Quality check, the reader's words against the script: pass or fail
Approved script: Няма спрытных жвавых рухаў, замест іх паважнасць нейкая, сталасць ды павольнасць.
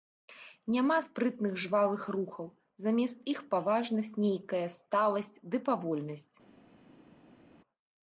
pass